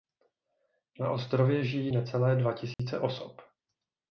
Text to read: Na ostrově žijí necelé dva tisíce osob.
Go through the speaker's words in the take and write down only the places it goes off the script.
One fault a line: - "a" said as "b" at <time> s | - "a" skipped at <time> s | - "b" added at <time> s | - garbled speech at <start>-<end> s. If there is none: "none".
none